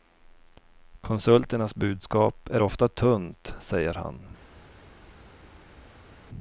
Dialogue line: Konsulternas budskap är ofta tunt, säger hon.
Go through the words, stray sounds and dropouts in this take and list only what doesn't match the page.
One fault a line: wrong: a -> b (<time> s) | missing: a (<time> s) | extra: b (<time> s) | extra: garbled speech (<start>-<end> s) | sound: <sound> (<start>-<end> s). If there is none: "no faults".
wrong: hon -> han (3.9 s)